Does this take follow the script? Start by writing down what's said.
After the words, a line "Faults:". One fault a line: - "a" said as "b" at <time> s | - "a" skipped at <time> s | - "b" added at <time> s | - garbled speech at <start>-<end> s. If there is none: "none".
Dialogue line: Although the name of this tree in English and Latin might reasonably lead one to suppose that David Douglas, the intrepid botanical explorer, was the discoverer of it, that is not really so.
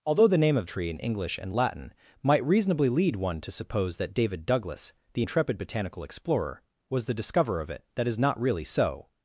Although the name of tree in English and Latin might reasonably lead one to suppose that David Douglas, the intrepid botanical explorer, was the discoverer of it, that is not really so.
Faults:
- "this" skipped at 0.7 s